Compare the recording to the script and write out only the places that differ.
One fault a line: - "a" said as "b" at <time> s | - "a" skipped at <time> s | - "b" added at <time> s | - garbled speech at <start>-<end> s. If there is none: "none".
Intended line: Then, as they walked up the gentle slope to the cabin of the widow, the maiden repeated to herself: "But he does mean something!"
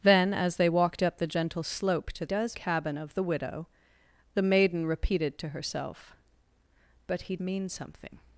- "the" said as "does" at 2.2 s
- "does" skipped at 7.4 s